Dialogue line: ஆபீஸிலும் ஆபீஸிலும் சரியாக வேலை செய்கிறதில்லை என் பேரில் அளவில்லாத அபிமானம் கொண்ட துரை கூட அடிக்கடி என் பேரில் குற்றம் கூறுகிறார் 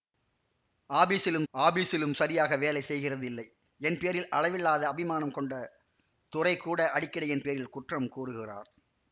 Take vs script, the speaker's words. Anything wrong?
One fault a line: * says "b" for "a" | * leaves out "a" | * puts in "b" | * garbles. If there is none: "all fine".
all fine